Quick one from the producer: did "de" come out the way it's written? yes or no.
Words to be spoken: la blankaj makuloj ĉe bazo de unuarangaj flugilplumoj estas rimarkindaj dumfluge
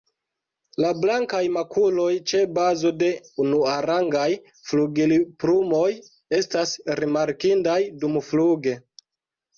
yes